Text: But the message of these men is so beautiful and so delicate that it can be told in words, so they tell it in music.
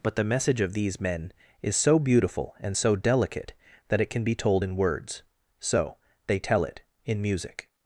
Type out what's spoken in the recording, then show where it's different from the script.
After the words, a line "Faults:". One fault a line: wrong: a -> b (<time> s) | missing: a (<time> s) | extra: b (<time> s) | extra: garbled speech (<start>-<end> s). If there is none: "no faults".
But the message of these men is so beautiful and so delicate that it can be told in words, so they tell it in music.
Faults:
no faults